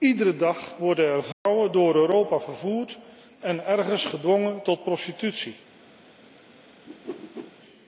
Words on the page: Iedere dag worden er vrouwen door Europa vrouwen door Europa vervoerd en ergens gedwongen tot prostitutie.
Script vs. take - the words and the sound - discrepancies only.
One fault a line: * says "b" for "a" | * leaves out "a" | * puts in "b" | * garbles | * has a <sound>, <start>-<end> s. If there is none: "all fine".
* has a dropout, 1.3-1.5 s
* leaves out "vrouwen door Europa"
* has a whoosh, 6.9-7.5 s